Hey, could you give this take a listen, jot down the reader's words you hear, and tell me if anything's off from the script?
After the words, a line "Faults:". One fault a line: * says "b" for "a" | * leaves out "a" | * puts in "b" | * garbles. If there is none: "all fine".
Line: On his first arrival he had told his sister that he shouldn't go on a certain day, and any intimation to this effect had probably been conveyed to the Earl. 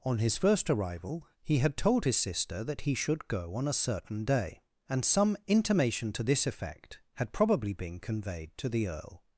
On his first arrival he had told his sister that he should go on a certain day, and some intimation to this effect had probably been conveyed to the Earl.
Faults:
* says "should" for "shouldn't"
* says "some" for "any"